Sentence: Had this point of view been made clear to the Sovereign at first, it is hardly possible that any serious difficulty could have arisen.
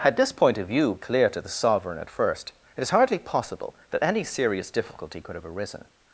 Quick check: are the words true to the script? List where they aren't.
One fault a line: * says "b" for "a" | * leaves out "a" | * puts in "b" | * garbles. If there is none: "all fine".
* leaves out "been made"